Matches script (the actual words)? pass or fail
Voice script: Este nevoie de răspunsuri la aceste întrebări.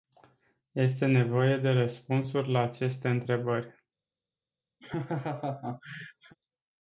pass